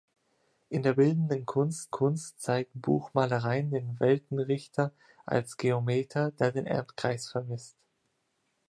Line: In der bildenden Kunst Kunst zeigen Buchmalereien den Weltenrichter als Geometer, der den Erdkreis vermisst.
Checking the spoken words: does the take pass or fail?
pass